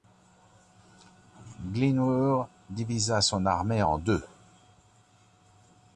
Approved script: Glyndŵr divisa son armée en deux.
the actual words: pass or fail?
pass